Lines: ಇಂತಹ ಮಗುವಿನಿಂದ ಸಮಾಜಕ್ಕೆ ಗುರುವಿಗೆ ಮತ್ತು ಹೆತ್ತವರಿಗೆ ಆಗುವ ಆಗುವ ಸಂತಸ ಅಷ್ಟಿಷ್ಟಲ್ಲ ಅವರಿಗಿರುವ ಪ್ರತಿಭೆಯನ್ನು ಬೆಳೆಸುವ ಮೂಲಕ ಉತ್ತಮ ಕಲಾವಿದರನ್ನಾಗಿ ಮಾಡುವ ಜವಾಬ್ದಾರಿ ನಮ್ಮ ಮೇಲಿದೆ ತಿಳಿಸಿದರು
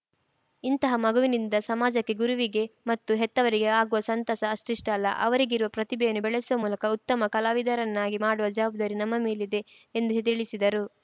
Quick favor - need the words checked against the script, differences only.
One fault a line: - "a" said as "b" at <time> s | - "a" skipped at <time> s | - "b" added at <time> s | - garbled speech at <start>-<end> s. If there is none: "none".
- "ಆಗುವ" skipped at 4.0 s
- "ಎಂದು" added at 9.9 s